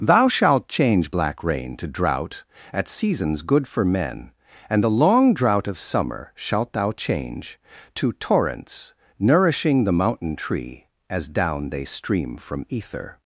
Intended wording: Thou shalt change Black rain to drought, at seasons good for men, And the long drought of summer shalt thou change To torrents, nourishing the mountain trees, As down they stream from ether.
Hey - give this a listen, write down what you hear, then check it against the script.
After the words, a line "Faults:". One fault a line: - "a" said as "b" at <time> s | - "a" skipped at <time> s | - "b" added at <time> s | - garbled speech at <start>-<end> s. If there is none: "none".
Thou shalt change Black rain to drought, at seasons good for men, And the long drought of summer shalt thou change To torrents, nourishing the mountain tree, As down they stream from ether.
Faults:
- "trees" said as "tree" at 10.3 s